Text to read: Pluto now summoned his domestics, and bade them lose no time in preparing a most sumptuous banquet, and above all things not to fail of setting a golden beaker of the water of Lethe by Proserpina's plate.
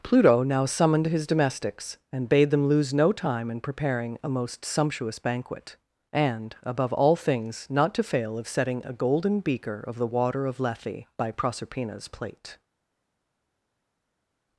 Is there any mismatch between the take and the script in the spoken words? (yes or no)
no